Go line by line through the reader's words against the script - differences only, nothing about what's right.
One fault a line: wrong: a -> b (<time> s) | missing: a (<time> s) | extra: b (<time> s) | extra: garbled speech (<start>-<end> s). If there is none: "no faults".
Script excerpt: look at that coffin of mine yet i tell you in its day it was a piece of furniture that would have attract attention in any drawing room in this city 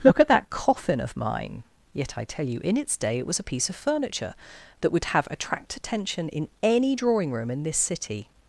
no faults